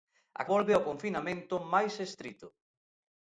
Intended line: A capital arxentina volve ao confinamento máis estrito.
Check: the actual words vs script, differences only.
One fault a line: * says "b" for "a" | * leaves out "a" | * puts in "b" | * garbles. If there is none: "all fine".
* leaves out "capital arxentina"